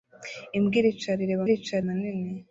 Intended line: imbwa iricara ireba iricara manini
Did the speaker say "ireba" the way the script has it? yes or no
yes